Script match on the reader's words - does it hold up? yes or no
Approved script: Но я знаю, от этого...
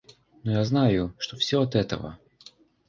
no